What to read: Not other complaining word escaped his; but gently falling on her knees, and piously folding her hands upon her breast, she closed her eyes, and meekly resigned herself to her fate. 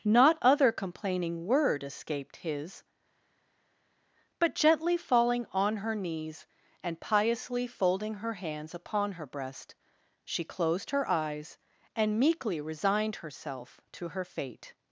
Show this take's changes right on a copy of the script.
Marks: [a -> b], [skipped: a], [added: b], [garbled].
Not other complaining word escaped his; but gently falling on her knees, and piously folding her hands upon her breast, she closed her eyes, and meekly resigned herself to her fate.